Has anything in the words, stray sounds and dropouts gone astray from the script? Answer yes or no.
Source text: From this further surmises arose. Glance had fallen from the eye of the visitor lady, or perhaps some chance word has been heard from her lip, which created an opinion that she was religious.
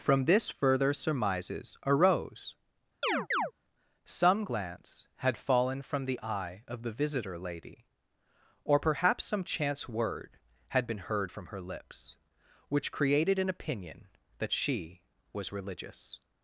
yes